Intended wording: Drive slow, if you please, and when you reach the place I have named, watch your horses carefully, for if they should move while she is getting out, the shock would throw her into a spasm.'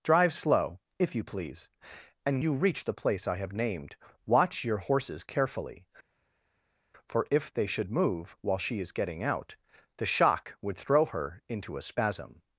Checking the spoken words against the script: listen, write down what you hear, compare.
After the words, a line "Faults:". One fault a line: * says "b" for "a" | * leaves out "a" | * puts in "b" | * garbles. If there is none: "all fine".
Drive slow, if you please, and you reach the place I have named, watch your horses carefully, for if they should move while she is getting out, the shock would throw her into a spasm.'
Faults:
* leaves out "when"